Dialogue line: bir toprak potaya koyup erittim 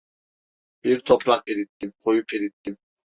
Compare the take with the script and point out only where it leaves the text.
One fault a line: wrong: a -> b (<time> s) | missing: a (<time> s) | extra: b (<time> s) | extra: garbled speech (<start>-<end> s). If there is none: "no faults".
wrong: potaya -> erittim (1.5 s)